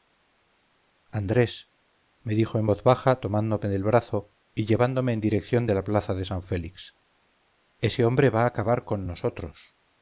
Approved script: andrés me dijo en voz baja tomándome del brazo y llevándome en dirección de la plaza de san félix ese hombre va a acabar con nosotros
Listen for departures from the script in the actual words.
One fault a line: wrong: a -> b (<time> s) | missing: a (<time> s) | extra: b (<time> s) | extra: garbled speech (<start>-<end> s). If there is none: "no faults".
no faults